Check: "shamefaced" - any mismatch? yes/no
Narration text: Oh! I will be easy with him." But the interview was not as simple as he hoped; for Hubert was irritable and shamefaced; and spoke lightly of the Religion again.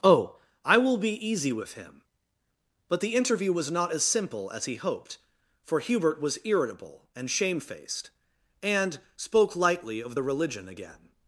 no